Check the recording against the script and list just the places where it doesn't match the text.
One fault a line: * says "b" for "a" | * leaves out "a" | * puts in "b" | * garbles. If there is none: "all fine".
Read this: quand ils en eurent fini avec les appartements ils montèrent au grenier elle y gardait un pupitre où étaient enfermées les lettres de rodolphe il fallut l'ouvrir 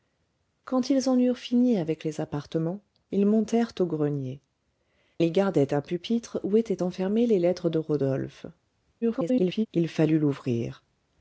* leaves out "elle"
* garbles